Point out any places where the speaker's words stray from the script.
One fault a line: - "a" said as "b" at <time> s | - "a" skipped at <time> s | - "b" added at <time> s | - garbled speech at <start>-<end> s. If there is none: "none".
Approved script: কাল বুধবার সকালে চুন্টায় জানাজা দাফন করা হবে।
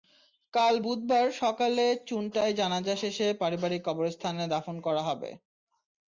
- "শেষে পারিবারিক কবরস্থানে" added at 3.0 s